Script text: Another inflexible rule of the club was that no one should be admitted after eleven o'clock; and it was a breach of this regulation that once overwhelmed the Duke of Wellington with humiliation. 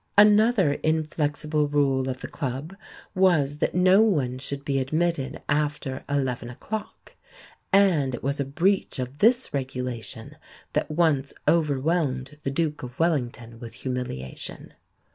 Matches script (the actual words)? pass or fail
pass